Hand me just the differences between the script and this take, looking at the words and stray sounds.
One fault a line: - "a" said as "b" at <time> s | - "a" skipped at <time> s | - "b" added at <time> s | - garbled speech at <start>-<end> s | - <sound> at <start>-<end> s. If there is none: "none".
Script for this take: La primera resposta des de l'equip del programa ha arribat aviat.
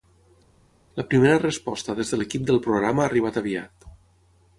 none